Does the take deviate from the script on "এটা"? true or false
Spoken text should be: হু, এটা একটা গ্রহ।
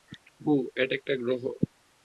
false